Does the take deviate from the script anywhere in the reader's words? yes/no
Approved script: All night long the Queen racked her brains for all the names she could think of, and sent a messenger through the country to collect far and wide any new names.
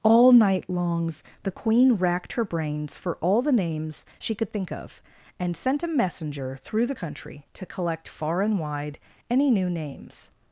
yes